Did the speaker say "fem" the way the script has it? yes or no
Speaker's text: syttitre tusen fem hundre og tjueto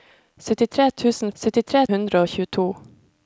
no